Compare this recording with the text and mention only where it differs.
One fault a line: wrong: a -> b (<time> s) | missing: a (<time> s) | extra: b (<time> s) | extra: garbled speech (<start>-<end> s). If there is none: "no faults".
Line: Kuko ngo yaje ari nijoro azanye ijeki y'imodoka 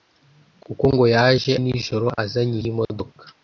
missing: ari (1.5 s)
missing: ijeki (2.6 s)